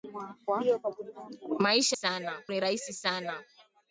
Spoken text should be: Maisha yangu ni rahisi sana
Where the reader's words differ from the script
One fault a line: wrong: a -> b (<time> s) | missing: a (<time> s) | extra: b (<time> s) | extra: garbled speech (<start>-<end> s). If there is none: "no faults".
wrong: yangu -> sana (1.9 s)